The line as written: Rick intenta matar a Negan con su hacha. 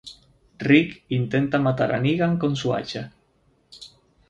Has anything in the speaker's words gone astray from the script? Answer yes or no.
no